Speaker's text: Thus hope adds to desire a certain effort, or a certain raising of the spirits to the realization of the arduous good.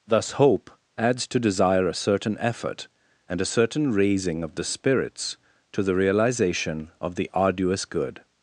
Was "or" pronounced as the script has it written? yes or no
no